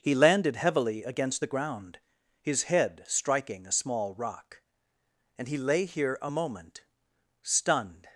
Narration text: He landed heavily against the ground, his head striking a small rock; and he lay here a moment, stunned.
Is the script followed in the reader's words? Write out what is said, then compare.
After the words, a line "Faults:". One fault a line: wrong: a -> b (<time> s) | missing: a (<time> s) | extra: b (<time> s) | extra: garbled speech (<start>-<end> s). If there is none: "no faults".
He landed heavily against the ground, his head striking a small rock; and he lay here a moment, stunned.
Faults:
no faults